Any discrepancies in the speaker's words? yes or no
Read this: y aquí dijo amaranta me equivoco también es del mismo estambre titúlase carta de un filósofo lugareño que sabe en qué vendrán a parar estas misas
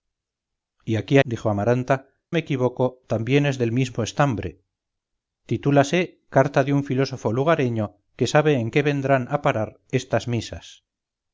no